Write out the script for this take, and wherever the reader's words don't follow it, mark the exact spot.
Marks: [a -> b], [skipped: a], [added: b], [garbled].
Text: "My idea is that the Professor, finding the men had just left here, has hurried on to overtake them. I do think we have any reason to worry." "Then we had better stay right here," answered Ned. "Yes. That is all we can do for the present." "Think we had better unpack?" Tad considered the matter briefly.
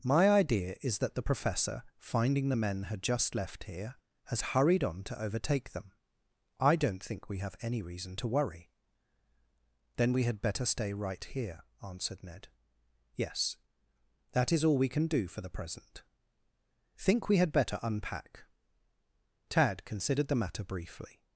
"My idea is that the Professor, finding the men had just left here, has hurried on to overtake them. I [do -> don't] think we have any reason to worry." "Then we had better stay right here," answered Ned. "Yes. That is all we can do for the present." "Think we had better unpack?" Tad considered the matter briefly.